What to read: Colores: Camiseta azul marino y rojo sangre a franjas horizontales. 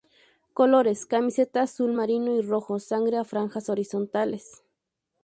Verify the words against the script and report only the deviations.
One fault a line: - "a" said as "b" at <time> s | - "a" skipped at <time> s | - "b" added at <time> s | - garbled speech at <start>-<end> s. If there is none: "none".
none